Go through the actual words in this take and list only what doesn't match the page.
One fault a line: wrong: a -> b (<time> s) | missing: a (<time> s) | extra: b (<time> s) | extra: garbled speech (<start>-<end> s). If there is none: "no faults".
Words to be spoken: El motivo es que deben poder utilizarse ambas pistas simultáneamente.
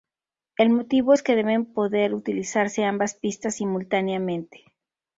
no faults